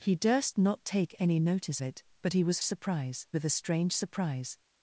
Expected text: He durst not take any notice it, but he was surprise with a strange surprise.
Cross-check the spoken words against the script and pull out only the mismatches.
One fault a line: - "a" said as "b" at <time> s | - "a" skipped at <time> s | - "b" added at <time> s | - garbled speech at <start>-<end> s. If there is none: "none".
none